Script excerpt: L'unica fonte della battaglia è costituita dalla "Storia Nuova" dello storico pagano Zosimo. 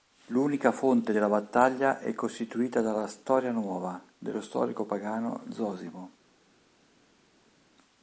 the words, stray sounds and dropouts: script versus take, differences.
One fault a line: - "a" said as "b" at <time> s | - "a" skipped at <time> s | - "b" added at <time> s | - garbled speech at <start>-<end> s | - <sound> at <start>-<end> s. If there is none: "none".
none